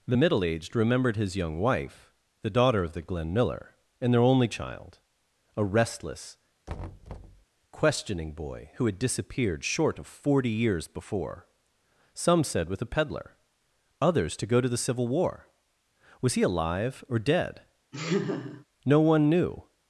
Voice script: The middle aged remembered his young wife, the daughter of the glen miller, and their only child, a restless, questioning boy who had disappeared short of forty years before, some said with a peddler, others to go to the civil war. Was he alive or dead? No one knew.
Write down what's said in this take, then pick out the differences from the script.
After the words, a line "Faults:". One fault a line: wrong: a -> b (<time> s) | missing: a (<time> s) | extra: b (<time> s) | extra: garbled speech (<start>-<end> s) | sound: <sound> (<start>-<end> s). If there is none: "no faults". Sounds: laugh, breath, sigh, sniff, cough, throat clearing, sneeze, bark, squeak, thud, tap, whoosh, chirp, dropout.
The middle aged remembered his young wife, the daughter of the glen miller, and their only child, a restless, questioning boy who had disappeared short of forty years before, some said with a peddler, others to go to the civil war. Was he alive or dead? No one knew.
Faults:
sound: thud (6.7-7.4 s)
sound: laugh (17.9-18.6 s)